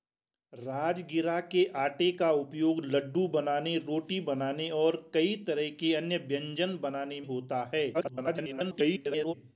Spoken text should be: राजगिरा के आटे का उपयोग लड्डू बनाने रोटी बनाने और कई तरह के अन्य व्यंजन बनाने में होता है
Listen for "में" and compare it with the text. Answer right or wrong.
wrong